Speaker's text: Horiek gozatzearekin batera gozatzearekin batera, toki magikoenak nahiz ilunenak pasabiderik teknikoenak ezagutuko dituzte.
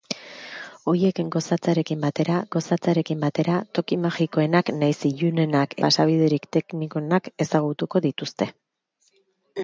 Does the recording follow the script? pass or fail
pass